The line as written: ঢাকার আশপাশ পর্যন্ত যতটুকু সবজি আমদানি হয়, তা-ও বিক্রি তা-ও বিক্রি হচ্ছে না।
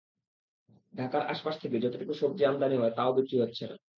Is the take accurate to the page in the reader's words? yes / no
no